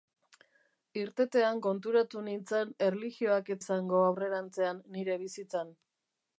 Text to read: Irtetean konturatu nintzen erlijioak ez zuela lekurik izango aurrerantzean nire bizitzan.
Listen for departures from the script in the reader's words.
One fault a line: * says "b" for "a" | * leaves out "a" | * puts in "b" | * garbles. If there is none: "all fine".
* leaves out "zuela lekurik"